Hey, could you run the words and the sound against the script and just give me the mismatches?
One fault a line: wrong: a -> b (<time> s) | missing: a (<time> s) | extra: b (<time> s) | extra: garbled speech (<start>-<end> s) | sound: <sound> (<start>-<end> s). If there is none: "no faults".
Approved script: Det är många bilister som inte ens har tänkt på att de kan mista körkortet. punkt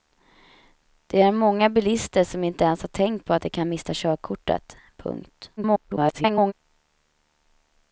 extra: garbled speech (5.6-6.5 s)